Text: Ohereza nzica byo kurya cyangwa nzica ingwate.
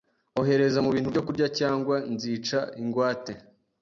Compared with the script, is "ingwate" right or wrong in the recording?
right